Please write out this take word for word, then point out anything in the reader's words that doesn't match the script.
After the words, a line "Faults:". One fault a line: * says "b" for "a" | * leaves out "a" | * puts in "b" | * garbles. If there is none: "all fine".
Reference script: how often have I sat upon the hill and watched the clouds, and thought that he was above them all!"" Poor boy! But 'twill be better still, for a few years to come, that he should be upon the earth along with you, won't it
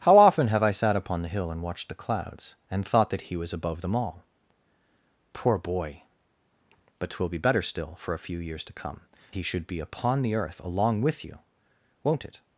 how often have I sat upon the hill and watched the clouds, and thought that he was above them all!"" Poor boy! But 'twill be better still, for a few years to come, he should be upon the earth along with you, won't it
Faults:
* leaves out "that"